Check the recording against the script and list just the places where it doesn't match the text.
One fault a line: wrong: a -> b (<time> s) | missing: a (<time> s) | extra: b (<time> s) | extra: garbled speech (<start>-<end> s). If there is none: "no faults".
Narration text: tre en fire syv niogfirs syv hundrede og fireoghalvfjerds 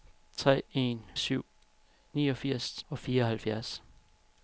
missing: fire (1.0 s)
missing: syv hundrede (2.8 s)